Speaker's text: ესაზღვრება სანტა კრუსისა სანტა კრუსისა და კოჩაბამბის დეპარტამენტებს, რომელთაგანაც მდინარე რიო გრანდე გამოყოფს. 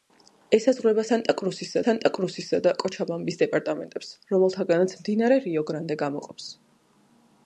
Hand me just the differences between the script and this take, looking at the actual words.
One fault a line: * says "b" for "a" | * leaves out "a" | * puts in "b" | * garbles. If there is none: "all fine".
all fine